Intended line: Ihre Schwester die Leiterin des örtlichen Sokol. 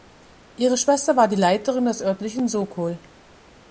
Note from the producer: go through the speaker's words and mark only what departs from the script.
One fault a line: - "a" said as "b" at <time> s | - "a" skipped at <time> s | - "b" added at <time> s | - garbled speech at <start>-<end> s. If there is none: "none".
- "war" added at 1.1 s